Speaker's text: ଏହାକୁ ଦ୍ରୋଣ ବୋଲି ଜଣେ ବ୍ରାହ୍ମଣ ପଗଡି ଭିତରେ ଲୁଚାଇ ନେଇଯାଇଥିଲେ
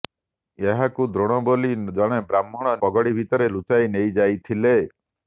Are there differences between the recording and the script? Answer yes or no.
no